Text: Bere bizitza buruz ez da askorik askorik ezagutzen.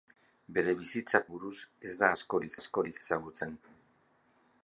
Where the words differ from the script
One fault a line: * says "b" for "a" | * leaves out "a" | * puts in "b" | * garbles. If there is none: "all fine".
all fine